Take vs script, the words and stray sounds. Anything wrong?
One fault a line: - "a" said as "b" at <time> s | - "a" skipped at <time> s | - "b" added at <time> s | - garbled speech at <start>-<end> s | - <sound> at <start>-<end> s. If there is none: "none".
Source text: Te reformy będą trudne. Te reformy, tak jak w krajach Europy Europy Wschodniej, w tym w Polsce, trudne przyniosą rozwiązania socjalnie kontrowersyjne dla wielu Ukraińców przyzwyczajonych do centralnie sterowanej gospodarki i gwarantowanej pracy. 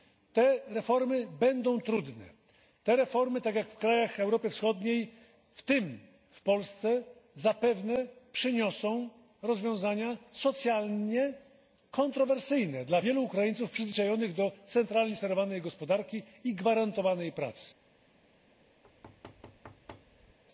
- "Europy" skipped at 4.5 s
- "trudne" said as "zapewne" at 7.3 s
- thud at 18.8-20.4 s